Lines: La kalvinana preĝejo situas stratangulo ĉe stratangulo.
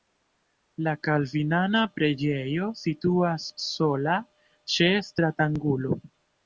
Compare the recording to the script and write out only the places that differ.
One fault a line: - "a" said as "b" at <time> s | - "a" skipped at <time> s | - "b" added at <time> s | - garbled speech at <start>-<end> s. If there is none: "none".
- "stratangulo" said as "sola" at 3.7 s